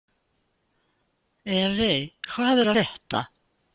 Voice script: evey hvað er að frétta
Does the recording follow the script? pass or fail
fail